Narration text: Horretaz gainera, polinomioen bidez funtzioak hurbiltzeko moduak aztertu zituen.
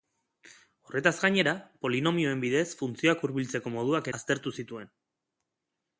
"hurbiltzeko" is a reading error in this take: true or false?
false